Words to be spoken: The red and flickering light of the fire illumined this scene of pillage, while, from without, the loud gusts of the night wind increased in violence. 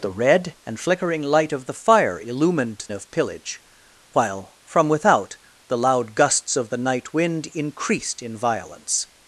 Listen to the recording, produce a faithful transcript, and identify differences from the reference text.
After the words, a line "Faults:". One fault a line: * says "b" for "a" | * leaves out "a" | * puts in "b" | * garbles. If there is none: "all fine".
The red and flickering light of the fire illumined of pillage, while, from without, the loud gusts of the night wind increased in violence.
Faults:
* leaves out "this scene"